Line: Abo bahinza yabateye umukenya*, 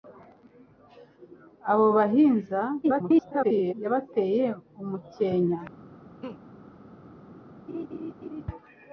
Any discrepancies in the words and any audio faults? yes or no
yes